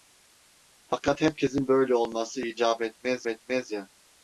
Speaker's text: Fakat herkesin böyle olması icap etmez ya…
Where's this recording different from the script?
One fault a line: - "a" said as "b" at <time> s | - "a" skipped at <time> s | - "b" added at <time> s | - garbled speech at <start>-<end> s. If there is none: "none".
- "etmez" added at 3.3 s